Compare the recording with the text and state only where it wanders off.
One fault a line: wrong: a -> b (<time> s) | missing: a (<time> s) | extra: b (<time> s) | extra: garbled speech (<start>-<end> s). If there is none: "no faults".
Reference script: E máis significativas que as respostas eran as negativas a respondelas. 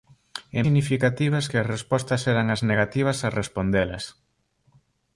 missing: máis (0.6 s)